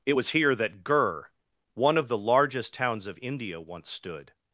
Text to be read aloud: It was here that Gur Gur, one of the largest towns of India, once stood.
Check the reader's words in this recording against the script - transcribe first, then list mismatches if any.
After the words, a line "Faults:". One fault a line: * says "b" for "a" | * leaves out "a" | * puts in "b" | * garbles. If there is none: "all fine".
It was here that Gur, one of the largest towns of India, once stood.
Faults:
* leaves out "Gur"